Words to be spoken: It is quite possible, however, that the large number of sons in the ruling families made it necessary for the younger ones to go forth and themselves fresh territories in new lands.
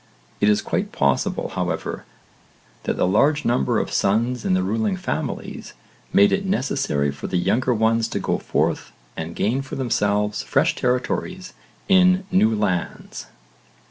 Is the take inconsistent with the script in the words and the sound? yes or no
yes